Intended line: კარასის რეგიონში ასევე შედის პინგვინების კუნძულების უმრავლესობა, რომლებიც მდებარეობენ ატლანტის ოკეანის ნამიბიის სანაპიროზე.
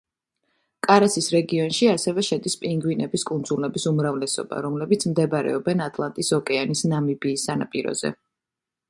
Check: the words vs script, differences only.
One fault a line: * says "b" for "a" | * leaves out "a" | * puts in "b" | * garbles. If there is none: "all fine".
all fine